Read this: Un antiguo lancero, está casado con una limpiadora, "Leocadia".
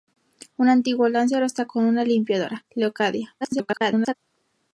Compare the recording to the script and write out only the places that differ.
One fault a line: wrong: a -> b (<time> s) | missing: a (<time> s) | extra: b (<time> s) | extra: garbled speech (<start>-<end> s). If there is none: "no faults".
missing: casado (1.7 s)
extra: garbled speech (3.4-4.2 s)